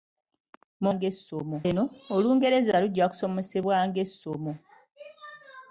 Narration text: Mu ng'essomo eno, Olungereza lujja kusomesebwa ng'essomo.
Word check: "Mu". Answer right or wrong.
right